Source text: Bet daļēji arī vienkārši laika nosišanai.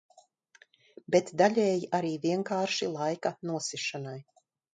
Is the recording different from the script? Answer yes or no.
no